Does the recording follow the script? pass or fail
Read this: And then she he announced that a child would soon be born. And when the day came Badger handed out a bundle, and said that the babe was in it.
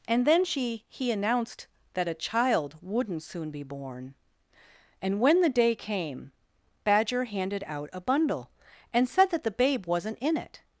fail